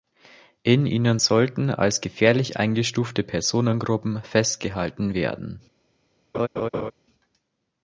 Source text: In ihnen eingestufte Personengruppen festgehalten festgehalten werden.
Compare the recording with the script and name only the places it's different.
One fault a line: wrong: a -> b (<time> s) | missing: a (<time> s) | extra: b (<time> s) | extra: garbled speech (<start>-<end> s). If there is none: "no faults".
extra: sollten als gefährlich (1.2 s)
missing: festgehalten (5.1 s)